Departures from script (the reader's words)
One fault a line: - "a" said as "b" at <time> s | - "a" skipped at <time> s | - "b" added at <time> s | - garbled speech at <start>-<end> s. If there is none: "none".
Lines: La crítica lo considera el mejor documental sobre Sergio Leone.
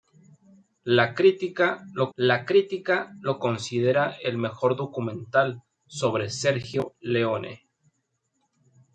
- "la crítica lo" added at 2.1 s